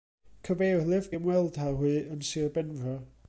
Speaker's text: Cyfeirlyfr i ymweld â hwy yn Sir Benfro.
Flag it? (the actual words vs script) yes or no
no